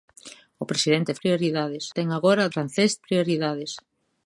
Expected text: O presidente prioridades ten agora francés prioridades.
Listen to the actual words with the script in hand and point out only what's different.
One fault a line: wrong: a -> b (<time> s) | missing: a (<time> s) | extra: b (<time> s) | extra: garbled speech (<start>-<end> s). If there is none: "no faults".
no faults